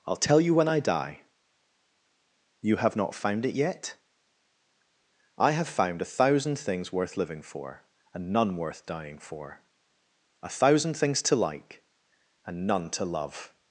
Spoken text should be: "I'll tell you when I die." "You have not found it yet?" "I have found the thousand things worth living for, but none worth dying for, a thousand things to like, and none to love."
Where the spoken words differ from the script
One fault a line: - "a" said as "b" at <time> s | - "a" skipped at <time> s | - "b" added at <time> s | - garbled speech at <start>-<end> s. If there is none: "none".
- "the" said as "a" at 6.0 s
- "but" said as "and" at 8.1 s